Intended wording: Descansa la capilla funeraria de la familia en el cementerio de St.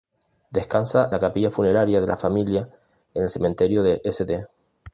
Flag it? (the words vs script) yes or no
no